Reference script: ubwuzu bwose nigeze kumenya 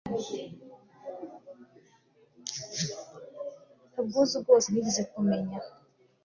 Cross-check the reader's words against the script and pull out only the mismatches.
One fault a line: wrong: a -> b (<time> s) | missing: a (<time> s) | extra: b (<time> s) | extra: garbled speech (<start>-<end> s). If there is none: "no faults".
no faults